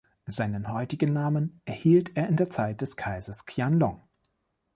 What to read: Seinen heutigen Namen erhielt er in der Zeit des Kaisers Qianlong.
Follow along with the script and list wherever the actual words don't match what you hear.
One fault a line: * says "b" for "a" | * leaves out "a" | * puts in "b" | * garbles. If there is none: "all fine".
all fine